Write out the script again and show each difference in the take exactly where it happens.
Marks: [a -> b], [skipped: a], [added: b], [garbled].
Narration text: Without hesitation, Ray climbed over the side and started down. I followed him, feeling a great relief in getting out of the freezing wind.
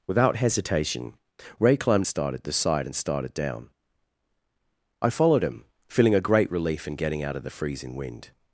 Without hesitation, Ray climbed [over -> started] the side and started down. I followed him, feeling a great relief in getting out of the freezing wind.